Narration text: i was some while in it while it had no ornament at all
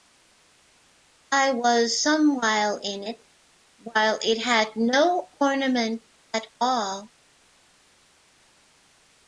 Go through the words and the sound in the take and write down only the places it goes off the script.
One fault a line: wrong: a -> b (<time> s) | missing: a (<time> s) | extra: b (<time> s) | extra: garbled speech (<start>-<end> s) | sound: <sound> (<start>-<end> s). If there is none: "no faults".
no faults